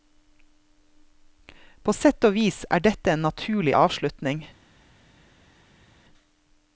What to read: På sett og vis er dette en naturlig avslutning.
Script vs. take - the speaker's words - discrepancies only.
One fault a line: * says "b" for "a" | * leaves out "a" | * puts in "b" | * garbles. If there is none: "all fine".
all fine